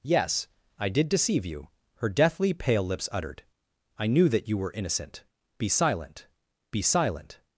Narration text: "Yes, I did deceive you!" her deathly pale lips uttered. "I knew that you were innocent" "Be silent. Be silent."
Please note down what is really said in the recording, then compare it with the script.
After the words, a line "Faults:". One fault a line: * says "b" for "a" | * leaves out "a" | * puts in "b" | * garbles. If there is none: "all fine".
"Yes, I did deceive you!" her deathly pale lips uttered. "I knew that you were innocent" "Be silent. Be silent."
Faults:
all fine